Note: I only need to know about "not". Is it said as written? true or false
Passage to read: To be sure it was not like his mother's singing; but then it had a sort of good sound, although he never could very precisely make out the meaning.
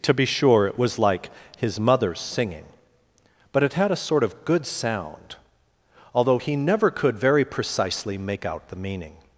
false